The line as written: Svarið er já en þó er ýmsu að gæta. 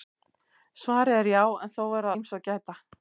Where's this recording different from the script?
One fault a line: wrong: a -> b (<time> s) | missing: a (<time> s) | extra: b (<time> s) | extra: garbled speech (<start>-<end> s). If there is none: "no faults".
no faults